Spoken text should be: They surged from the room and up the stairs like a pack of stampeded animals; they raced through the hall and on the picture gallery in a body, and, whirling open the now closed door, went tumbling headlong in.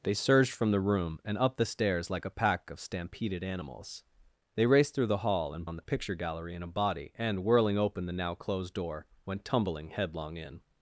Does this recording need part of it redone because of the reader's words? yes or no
no